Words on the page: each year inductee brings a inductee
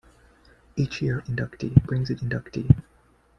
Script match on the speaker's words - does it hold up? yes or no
yes